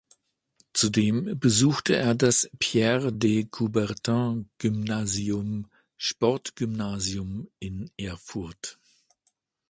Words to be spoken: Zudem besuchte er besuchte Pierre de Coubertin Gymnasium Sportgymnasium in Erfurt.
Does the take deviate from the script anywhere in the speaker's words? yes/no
yes